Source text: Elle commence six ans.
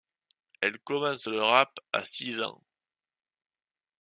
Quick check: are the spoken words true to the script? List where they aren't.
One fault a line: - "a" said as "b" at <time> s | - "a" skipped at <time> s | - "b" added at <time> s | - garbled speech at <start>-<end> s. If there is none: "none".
- "le rap à" added at 1.2 s